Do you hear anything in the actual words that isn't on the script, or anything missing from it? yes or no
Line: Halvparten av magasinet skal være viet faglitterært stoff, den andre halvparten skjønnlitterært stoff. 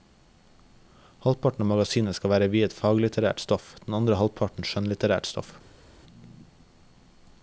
no